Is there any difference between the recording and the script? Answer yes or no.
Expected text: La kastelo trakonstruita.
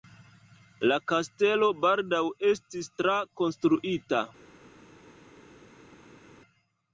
yes